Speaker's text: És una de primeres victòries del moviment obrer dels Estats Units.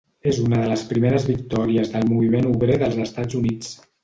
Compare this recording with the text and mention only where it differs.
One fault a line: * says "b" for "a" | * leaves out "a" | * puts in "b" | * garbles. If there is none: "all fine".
* puts in "les"